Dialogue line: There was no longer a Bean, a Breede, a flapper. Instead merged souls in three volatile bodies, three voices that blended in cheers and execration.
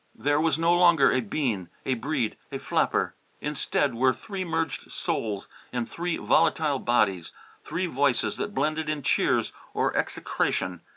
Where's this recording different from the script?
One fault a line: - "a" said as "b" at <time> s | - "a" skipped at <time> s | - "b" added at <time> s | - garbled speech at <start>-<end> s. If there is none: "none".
- "were three" added at 3.9 s
- "and" said as "or" at 9.7 s